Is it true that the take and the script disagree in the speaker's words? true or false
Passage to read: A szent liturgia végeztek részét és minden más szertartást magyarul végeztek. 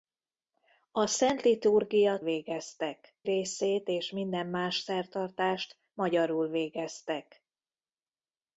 false